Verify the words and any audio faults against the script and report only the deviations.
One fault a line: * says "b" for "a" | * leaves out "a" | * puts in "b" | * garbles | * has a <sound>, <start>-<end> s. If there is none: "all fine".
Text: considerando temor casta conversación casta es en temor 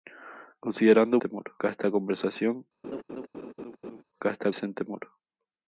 * has a laugh, 2.8-4.0 s